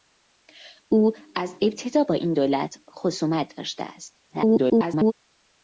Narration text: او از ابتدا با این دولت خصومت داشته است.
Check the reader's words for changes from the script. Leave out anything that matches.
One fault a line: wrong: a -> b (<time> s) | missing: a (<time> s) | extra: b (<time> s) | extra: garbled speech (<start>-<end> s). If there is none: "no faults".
extra: garbled speech (4.3-5.1 s)